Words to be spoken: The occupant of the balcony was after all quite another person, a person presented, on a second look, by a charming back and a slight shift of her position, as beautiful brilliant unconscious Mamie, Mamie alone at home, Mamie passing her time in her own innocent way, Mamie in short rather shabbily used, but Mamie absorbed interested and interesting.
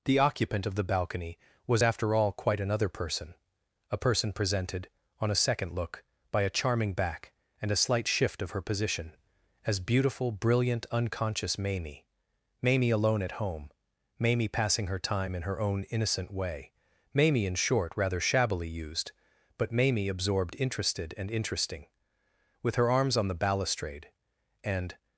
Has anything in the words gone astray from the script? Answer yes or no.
yes